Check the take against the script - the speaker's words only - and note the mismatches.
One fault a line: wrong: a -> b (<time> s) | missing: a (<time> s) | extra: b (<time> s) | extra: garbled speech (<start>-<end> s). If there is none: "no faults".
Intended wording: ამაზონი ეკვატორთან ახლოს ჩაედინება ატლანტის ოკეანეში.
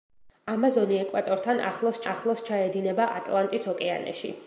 extra: ახლოს (2.1 s)